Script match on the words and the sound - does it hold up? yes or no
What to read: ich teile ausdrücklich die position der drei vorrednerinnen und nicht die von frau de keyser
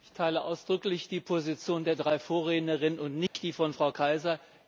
no